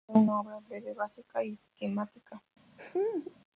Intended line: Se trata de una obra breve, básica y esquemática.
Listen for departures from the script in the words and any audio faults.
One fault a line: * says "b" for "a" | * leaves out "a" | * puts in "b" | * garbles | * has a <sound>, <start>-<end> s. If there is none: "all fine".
* has a laugh, 2.8-3.3 s